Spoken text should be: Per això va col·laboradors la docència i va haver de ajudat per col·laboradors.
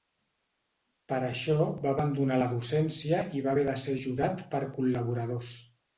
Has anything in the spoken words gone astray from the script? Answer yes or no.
yes